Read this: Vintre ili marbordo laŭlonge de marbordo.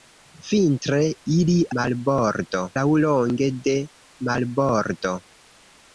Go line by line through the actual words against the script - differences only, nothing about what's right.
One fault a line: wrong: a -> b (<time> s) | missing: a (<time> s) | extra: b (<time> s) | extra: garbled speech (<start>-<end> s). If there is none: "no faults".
no faults